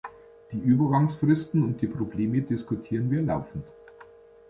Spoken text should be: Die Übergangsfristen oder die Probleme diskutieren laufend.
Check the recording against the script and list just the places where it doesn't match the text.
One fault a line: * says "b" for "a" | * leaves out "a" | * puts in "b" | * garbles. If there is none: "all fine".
* says "und" for "oder"
* puts in "wir"